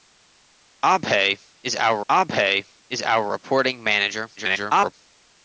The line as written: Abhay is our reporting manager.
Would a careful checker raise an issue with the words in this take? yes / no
yes